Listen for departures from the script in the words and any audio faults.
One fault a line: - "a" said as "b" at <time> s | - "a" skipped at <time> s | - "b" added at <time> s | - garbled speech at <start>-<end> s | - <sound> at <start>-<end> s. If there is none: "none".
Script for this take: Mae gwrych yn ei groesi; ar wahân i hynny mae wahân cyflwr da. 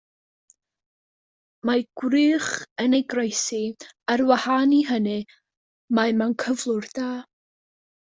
- "wahân" said as "mewn" at 6.2 s